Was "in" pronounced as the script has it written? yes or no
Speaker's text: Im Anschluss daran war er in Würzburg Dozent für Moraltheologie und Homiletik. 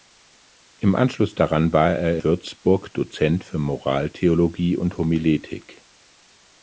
no